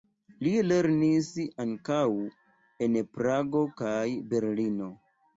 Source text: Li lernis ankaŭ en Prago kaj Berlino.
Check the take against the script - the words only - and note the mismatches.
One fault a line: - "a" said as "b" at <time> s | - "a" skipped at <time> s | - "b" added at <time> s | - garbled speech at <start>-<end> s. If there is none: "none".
none